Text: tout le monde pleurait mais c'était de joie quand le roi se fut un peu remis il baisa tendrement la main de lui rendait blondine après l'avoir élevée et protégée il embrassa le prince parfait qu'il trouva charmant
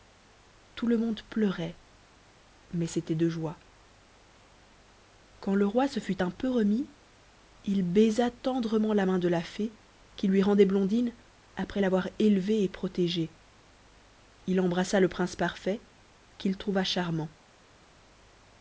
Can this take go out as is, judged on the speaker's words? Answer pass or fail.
fail